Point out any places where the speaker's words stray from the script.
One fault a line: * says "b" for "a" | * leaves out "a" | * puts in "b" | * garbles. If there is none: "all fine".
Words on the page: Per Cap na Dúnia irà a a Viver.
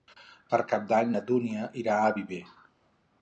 * puts in "d'Any"
* leaves out "a"